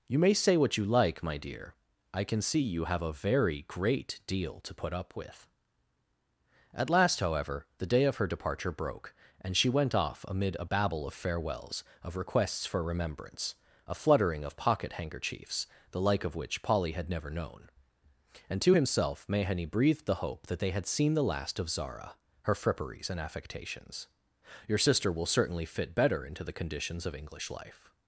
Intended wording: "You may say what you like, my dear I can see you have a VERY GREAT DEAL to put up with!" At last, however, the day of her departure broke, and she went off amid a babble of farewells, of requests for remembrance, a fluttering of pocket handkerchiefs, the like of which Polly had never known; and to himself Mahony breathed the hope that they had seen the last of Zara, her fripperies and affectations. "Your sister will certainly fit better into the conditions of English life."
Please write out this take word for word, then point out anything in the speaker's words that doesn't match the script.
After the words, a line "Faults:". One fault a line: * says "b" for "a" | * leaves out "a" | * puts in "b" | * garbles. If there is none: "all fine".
"You may say what you like, my dear I can see you have a VERY GREAT DEAL to put up with!" At last, however, the day of her departure broke, and she went off amid a babble of farewells, of requests for remembrance, a fluttering of pocket handkerchiefs, the like of which Polly had never known; and to himself Mahony breathed the hope that they had seen the last of Zara, her fripperies and affectations. "Your sister will certainly fit better into the conditions of English life."
Faults:
all fine